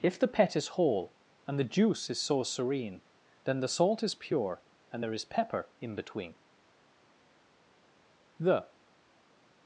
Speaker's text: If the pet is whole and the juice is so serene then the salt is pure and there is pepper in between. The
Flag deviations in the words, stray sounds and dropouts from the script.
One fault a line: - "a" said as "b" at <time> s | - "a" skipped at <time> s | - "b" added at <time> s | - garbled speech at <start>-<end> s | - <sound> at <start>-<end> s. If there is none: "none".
none